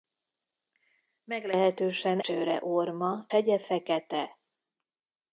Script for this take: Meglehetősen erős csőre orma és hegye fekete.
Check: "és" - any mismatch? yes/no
yes